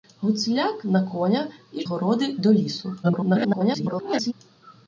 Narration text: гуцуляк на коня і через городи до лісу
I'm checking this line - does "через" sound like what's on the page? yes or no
no